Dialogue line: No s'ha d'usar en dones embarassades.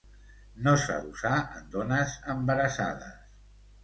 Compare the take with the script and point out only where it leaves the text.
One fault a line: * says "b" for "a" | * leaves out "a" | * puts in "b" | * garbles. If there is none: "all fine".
all fine